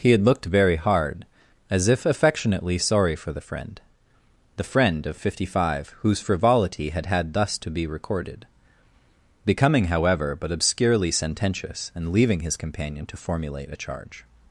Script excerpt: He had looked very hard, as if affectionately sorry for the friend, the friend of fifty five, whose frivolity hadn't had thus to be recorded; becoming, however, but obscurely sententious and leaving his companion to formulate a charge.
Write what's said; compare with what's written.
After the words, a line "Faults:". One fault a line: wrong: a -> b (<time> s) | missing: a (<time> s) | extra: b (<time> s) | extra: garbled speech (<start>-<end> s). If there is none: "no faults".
He had looked very hard, as if affectionately sorry for the friend, the friend of fifty five, whose frivolity had had thus to be recorded; becoming, however, but obscurely sententious and leaving his companion to formulate a charge.
Faults:
wrong: hadn't -> had (6.9 s)